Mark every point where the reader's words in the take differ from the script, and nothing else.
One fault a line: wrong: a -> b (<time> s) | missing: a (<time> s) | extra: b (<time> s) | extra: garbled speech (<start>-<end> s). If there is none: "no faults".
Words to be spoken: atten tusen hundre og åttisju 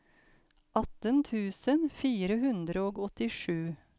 extra: fire (2.0 s)